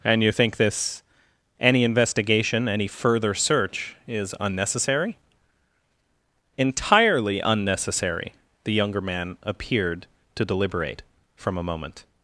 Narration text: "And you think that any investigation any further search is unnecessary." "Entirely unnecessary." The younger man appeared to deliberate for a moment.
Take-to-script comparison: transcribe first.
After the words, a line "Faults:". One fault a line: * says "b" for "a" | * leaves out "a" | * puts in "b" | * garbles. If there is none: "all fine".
"And you think this any investigation any further search is unnecessary." "Entirely unnecessary." The younger man appeared to deliberate from a moment.
Faults:
* says "this" for "that"
* says "from" for "for"